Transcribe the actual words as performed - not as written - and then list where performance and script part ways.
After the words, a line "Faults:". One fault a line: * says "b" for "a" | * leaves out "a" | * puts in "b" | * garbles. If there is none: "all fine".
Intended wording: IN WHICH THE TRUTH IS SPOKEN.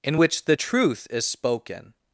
IN WHICH THE TRUTH IS SPOKEN.
Faults:
all fine